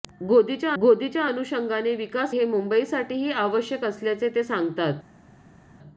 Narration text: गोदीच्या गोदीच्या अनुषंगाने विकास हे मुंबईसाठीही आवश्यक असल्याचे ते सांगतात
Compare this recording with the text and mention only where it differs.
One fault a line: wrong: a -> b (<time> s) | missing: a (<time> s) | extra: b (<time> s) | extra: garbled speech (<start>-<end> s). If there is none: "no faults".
no faults